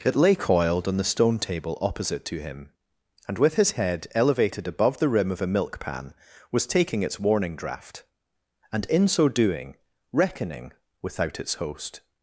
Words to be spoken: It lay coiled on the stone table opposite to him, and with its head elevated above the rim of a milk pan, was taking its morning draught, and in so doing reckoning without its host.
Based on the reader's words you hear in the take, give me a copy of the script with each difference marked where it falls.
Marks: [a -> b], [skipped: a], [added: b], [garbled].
It lay coiled on the stone table opposite to him, and with [its -> his] head elevated above the rim of a milk pan, was taking its [morning -> warning] draught, and in so doing reckoning without its host.